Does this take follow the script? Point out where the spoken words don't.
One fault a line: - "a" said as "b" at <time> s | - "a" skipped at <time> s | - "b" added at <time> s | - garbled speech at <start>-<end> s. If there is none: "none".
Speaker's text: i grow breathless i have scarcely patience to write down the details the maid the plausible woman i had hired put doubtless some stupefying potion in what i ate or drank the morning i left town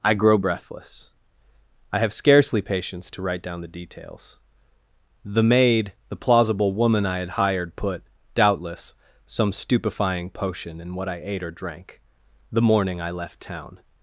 none